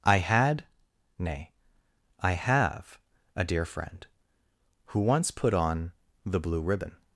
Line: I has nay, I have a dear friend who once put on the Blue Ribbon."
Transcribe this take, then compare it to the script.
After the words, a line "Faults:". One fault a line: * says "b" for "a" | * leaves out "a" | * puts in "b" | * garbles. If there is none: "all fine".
I had nay, I have a dear friend who once put on the Blue Ribbon."
Faults:
* says "had" for "has"